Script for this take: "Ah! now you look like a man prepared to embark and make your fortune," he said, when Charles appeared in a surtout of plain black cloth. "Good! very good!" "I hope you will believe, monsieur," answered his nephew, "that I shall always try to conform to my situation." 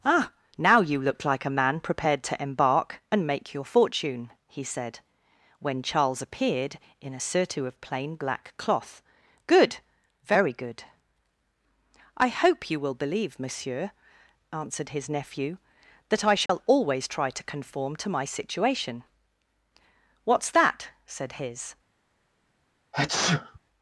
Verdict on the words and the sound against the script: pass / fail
fail